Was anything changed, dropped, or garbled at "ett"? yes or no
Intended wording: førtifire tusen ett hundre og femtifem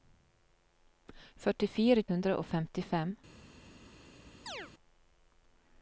yes